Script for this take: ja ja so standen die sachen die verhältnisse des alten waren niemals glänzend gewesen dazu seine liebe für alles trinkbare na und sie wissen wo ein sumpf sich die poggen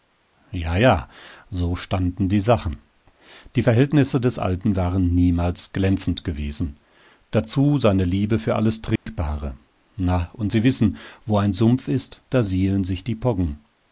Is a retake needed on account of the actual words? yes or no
yes